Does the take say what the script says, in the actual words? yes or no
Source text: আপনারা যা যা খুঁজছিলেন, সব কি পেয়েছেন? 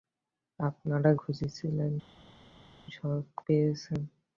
no